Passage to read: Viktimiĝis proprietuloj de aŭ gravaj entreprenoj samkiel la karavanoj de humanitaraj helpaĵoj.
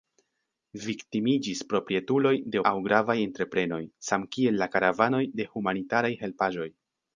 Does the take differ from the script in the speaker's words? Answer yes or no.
no